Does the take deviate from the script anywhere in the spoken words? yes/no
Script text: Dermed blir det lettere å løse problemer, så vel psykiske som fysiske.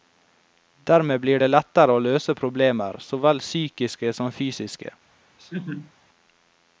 no